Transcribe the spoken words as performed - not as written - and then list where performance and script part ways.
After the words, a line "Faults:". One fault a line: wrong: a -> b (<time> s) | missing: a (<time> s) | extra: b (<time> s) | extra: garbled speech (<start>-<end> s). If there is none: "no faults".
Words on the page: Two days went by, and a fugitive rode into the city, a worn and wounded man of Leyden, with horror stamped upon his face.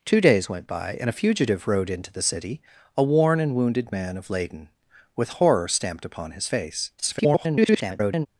Two days went by, and a fugitive rode into the city, a worn and wounded man of Leyden, with horror stamped upon his face. [garbled]
Faults:
extra: garbled speech (7.0-8.3 s)